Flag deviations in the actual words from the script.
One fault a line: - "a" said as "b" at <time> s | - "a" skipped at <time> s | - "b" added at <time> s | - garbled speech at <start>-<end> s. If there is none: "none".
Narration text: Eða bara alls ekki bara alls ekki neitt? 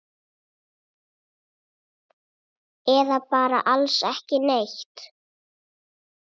- "bara alls ekki" skipped at 4.4 s